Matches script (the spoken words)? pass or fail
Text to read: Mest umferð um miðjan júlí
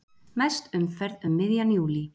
pass